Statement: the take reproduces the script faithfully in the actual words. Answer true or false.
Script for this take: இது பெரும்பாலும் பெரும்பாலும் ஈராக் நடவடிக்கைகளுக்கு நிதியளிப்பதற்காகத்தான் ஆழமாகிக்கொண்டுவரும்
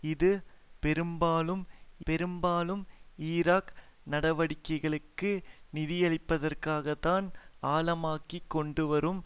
true